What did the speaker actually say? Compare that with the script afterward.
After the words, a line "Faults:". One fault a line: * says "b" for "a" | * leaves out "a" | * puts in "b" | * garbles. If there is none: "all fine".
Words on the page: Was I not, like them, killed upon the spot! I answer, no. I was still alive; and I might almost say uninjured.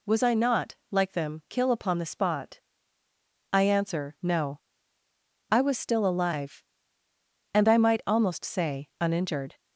Was I not, like them, kill upon the spot! I answer, no. I was still alive; and I might almost say uninjured.
Faults:
* says "kill" for "killed"